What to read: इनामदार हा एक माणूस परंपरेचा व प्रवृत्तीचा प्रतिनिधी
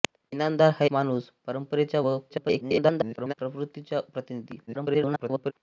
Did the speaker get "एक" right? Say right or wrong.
wrong